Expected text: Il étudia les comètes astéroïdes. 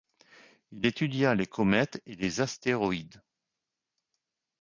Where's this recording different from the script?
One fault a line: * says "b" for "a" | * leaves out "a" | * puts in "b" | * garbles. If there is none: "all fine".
* puts in "et les"